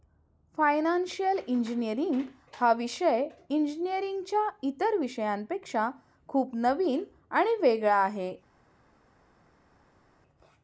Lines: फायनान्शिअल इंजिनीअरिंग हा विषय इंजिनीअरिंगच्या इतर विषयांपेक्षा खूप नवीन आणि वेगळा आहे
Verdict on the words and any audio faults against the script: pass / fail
pass